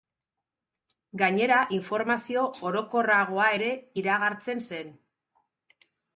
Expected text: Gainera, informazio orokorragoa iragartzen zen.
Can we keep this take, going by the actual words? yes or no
no